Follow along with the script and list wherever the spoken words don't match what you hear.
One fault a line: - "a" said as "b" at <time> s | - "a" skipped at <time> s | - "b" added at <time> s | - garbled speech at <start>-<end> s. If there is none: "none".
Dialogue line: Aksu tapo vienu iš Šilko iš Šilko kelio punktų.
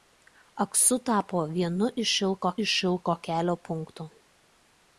none